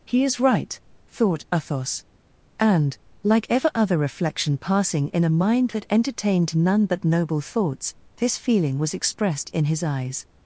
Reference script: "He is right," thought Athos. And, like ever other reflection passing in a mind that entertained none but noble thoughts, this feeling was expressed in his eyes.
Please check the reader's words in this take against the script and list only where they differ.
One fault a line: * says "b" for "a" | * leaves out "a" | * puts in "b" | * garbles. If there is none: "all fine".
all fine